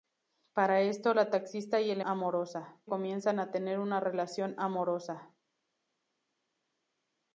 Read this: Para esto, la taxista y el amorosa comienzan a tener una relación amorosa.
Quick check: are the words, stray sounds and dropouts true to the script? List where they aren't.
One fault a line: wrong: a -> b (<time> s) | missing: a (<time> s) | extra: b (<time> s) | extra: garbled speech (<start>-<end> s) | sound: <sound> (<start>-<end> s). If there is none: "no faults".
no faults